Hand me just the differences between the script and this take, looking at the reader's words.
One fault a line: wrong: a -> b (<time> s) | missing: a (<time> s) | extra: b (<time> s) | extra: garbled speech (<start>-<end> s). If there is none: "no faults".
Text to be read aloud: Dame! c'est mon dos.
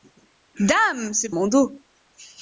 no faults